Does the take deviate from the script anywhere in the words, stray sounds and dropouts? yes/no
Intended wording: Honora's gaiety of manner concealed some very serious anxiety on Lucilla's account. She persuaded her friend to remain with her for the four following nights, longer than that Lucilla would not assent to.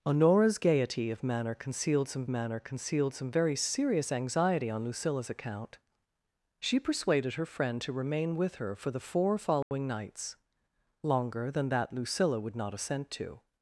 yes